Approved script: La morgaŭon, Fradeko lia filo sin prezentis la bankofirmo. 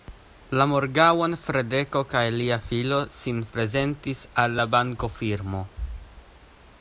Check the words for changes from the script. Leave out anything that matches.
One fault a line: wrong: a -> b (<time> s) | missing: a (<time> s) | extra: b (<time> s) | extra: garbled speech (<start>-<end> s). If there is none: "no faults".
extra: kaj (2.1 s)
extra: al (4.5 s)